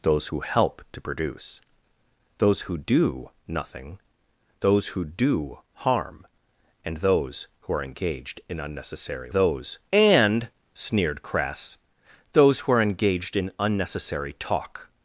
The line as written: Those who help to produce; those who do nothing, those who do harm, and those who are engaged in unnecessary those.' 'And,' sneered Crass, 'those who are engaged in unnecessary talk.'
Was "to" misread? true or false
false